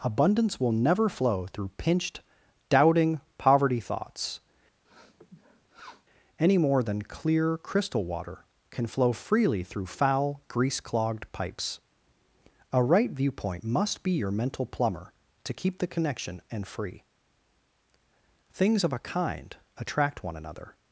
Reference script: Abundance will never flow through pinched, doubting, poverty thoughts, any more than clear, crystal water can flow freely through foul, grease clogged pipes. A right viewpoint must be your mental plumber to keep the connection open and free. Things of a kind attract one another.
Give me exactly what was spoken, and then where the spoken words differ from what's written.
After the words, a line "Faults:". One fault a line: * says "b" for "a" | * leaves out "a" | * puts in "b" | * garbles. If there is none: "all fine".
Abundance will never flow through pinched, doubting, poverty thoughts, any more than clear, crystal water can flow freely through foul, grease clogged pipes. A right viewpoint must be your mental plumber to keep the connection and free. Things of a kind attract one another.
Faults:
* leaves out "open"